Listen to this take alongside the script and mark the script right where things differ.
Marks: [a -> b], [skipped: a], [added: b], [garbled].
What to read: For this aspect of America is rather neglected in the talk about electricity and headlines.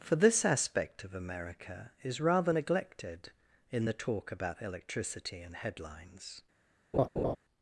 For this aspect of America is rather neglected in the talk about electricity and headlines.